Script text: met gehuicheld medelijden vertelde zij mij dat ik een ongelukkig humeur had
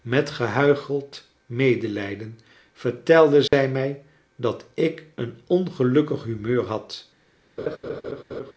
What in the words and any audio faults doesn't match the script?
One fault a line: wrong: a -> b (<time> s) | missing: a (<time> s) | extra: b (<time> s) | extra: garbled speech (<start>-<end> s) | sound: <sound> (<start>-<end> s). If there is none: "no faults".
sound: dropout (3.5-3.5 s)
sound: laugh (7.6-8.5 s)